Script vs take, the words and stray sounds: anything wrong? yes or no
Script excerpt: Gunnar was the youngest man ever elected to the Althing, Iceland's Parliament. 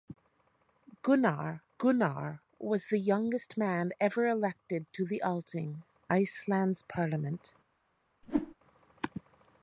yes